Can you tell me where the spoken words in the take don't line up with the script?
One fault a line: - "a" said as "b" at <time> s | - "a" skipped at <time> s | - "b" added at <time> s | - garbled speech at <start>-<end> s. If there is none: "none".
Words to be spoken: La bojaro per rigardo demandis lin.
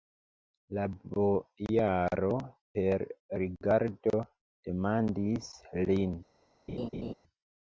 none